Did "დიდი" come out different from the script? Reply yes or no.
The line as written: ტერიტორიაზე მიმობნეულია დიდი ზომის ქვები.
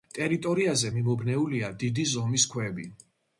no